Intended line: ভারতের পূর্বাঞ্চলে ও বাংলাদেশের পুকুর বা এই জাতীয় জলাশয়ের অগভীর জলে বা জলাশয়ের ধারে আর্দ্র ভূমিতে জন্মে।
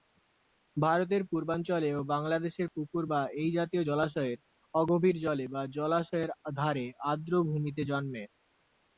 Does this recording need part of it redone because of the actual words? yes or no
no